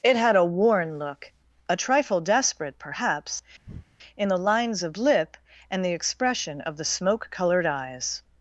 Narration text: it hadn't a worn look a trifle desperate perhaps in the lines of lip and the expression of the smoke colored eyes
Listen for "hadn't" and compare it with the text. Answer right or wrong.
wrong